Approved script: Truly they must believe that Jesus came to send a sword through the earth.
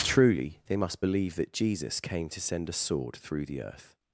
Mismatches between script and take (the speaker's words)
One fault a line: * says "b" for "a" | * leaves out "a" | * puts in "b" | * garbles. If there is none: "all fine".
all fine